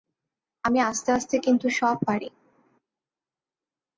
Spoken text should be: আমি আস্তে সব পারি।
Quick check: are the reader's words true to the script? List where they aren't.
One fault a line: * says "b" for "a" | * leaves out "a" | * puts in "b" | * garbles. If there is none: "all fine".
* puts in "আস্তে কিন্তু"